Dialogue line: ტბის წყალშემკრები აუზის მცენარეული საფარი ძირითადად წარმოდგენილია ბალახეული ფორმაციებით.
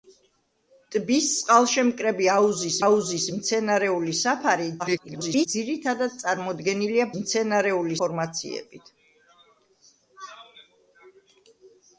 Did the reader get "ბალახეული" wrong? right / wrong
wrong